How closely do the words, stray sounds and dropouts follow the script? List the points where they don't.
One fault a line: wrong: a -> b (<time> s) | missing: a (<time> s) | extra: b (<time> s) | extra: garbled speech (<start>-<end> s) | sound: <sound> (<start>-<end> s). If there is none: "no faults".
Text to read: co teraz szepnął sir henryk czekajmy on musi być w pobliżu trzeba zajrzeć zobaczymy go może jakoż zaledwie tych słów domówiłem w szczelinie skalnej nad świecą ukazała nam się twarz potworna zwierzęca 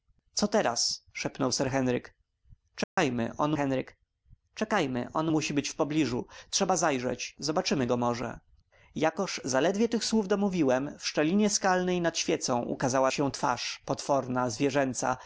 sound: dropout (2.8-3.0 s)
extra: henryk czekajmy on (3.6 s)
missing: nam (13.1 s)